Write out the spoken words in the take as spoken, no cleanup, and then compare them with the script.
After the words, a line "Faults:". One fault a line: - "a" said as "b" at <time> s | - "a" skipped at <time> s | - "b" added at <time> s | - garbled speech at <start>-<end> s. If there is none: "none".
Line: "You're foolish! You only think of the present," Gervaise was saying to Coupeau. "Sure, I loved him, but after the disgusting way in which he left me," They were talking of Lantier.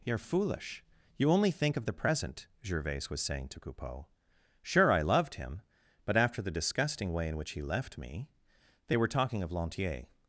"You're foolish! You only think of the present," Gervaise was saying to Coupeau. "Sure, I loved him, but after the disgusting way in which he left me," They were talking of Lantier.
Faults:
none